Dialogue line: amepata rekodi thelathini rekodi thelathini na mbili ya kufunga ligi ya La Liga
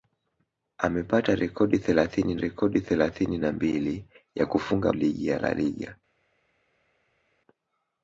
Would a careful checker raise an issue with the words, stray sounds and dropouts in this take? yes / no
no